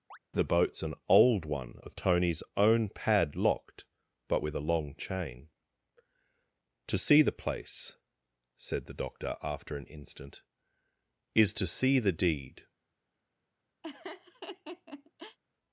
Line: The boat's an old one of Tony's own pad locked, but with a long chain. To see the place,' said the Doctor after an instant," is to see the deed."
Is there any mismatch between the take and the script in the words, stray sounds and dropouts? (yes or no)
yes